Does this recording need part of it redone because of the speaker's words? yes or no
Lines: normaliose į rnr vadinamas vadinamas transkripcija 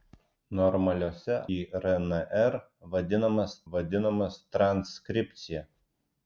no